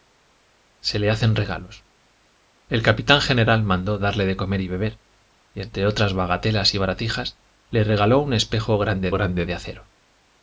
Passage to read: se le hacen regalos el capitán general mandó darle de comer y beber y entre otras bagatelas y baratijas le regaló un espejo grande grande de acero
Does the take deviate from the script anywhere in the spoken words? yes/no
no